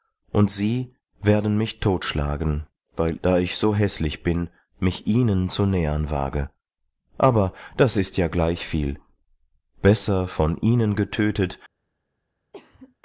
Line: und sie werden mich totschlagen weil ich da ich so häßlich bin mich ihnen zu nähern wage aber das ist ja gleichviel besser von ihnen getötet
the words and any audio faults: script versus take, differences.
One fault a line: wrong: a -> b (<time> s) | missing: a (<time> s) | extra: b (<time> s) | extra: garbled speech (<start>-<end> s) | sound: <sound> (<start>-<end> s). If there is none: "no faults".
missing: ich (3.2 s)
sound: cough (12.5-13.0 s)